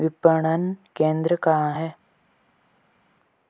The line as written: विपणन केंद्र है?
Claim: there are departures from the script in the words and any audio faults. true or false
true